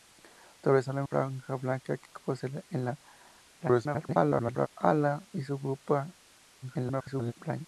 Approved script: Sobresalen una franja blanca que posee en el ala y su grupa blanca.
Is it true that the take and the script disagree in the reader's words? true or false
true